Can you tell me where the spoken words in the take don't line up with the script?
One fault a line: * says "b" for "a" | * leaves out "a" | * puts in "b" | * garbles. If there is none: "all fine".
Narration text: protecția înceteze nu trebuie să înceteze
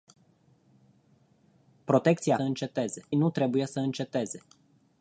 all fine